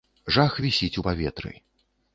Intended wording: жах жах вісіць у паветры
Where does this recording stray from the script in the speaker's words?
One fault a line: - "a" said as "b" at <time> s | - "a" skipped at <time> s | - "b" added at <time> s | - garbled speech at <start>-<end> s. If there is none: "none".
- "жах" skipped at 0.6 s